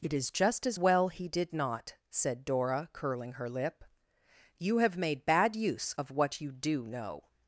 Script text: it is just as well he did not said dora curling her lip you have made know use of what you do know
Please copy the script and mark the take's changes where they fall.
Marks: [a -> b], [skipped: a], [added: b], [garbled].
it is just as well he did not said dora curling her lip you have made [know -> bad] use of what you do know